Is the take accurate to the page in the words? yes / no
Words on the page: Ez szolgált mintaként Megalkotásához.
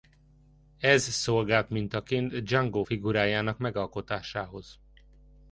no